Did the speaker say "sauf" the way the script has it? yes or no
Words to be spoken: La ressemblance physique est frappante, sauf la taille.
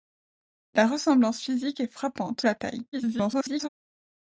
no